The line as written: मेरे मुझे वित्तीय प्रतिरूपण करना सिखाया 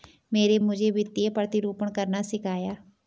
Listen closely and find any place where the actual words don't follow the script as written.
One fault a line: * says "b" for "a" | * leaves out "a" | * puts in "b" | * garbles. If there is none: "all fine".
all fine